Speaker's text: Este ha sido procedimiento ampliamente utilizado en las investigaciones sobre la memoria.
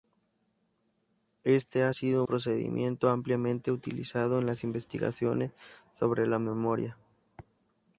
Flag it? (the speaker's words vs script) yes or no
no